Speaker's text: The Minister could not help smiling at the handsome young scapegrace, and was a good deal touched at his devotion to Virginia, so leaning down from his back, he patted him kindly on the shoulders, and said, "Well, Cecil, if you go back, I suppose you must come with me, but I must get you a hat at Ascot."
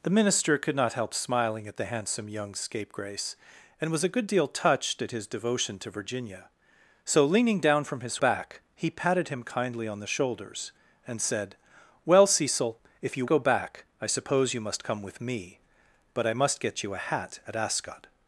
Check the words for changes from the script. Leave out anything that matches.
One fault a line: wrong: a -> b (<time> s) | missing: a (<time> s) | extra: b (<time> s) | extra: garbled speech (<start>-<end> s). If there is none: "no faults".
no faults